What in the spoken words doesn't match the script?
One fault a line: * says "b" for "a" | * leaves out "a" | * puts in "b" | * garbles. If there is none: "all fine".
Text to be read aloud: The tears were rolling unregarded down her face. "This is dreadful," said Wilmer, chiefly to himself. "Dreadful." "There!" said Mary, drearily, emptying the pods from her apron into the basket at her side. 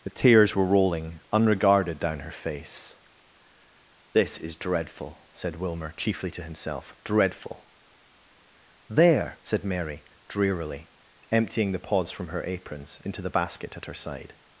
* says "aprons" for "apron"